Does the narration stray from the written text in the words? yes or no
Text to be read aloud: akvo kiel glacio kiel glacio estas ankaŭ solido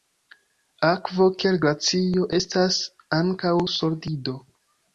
yes